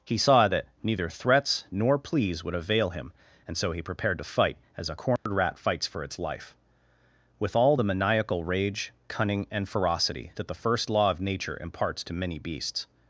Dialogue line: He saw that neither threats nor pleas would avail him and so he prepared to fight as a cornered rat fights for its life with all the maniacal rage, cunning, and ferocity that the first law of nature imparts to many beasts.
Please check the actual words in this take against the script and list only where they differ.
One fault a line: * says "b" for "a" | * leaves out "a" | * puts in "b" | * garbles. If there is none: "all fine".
all fine